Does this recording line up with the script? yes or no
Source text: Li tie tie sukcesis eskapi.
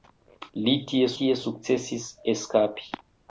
yes